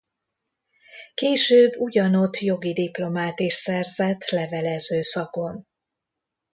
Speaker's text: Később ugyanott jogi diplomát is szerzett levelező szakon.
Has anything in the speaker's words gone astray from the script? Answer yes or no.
no